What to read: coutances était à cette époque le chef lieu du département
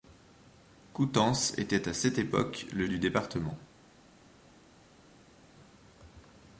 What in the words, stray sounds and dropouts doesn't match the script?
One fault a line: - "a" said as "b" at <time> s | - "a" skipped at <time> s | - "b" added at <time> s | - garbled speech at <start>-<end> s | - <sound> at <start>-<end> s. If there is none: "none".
- "chef lieu" skipped at 2.9 s